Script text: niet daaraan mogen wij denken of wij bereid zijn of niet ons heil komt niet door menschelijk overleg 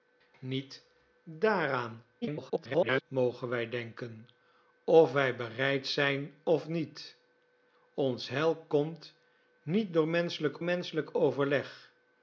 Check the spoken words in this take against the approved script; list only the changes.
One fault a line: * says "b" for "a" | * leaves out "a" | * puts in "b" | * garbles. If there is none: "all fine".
* garbles
* puts in "menschelijk"